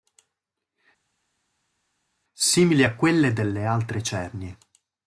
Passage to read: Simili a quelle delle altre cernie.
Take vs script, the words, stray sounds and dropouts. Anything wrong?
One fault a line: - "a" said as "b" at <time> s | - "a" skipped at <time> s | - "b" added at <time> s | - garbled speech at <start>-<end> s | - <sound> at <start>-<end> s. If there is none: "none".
none